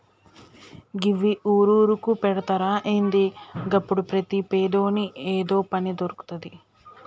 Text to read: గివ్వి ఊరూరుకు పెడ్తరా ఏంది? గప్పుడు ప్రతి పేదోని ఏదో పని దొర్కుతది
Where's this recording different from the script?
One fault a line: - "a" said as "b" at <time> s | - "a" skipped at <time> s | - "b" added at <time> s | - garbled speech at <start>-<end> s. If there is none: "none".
none